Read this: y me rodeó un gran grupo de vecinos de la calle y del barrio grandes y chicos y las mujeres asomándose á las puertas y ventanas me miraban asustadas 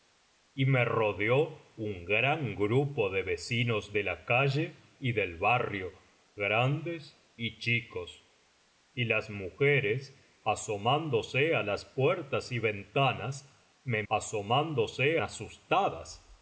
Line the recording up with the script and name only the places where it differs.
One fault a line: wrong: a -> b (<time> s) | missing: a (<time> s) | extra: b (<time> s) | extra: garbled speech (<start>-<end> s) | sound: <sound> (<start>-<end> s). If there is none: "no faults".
wrong: miraban -> asomándose (14.1 s)